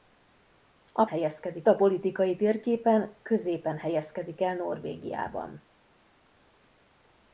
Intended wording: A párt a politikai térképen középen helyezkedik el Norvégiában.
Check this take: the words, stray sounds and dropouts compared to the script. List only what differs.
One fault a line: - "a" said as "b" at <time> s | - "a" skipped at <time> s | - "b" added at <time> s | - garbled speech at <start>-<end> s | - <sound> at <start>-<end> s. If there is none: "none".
- "párt" said as "helyezkedik" at 1.0 s